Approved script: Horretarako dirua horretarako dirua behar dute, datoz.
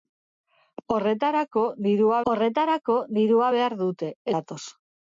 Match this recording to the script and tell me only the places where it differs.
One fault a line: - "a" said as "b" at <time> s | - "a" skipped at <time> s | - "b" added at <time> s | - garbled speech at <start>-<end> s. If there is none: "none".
none